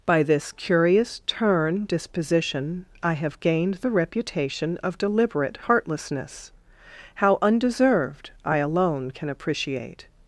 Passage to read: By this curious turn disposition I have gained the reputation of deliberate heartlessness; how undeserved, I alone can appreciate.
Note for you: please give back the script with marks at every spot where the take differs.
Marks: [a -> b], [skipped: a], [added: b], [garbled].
By this curious turn disposition I have gained the reputation of deliberate heartlessness; how undeserved, I alone can appreciate.